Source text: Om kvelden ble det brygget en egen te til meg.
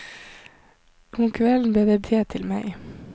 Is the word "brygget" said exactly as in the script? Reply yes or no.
no